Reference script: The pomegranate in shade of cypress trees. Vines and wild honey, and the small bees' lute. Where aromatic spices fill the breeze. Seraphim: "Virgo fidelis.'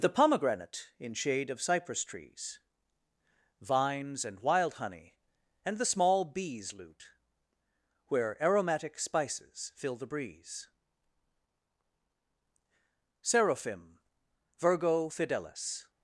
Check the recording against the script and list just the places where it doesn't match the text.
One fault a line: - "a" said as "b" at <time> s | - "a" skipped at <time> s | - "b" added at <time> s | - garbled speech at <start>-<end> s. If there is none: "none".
none